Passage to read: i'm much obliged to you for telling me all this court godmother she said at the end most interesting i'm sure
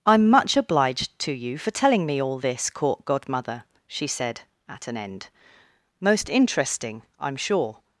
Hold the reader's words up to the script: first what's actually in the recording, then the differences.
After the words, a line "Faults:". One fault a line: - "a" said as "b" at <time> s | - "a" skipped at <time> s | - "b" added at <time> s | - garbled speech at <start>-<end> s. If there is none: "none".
i'm much obliged to you for telling me all this court godmother she said at an end most interesting i'm sure
Faults:
- "the" said as "an" at 4.9 s